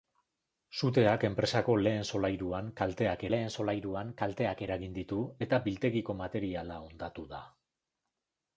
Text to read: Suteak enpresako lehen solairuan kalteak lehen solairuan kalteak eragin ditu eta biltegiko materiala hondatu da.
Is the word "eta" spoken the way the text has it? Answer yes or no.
yes